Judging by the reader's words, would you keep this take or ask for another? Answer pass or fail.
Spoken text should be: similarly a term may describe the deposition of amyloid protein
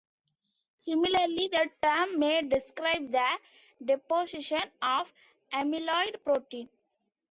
fail